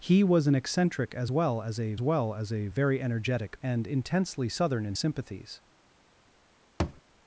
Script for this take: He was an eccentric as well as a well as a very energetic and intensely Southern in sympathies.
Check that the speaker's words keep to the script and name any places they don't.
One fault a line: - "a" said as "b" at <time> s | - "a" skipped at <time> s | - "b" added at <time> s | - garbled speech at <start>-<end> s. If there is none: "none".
none